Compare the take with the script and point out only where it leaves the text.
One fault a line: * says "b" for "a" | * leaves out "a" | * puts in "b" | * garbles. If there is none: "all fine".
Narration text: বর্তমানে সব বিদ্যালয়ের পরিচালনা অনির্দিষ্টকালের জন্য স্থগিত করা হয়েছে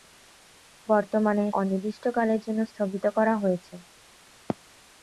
* leaves out "সব বিদ্যালয়ের পরিচালনা"